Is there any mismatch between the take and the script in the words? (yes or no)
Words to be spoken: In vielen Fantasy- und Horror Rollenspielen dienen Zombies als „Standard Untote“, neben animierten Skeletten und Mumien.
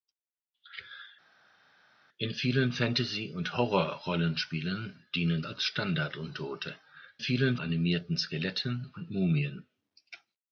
yes